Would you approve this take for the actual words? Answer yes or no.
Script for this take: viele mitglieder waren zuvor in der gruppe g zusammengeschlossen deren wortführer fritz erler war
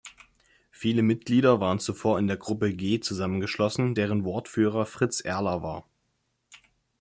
yes